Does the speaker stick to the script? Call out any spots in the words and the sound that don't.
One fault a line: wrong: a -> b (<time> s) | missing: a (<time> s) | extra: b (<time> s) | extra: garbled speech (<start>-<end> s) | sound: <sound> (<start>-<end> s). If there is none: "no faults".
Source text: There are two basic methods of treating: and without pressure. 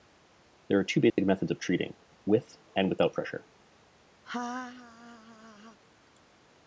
sound: dropout (1.1-1.2 s)
extra: with (2.2 s)
sound: laugh (4.2-5.8 s)